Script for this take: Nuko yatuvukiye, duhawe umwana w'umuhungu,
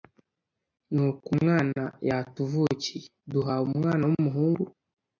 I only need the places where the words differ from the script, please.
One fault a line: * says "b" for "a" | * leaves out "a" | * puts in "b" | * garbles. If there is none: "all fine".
* puts in "umwana"